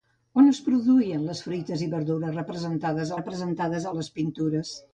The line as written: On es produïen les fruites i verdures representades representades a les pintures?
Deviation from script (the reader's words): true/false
false